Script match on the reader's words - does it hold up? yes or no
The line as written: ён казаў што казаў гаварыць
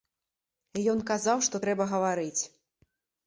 no